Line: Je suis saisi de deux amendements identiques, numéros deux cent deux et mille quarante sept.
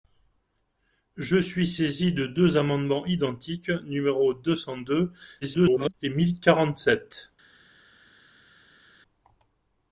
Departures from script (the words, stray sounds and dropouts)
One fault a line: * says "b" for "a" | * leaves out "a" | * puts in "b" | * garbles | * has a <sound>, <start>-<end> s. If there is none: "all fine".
* garbles